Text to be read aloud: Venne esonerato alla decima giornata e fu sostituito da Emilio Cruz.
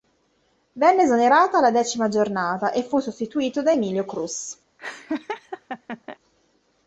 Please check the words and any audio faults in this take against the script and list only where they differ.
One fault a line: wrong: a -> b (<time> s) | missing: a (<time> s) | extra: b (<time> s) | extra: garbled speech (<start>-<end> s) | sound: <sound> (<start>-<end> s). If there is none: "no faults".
sound: laugh (4.8-6.2 s)